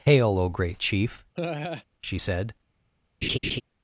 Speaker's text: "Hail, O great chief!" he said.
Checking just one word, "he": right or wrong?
wrong